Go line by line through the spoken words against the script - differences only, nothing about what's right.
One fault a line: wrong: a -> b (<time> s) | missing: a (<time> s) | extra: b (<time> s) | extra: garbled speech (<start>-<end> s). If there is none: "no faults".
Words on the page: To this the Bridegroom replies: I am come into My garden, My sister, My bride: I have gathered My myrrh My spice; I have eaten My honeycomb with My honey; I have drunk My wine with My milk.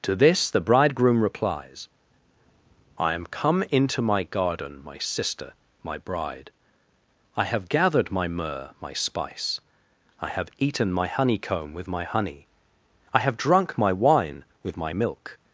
no faults